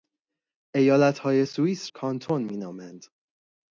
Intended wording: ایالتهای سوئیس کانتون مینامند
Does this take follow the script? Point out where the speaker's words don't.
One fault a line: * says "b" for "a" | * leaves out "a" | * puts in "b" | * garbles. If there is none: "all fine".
all fine